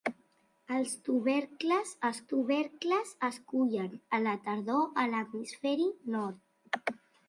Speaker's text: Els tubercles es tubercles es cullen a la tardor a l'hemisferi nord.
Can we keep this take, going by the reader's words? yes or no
yes